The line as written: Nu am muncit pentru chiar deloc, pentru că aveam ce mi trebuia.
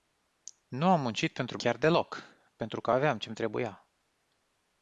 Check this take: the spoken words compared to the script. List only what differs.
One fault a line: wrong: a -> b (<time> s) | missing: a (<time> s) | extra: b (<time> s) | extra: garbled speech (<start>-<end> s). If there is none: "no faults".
no faults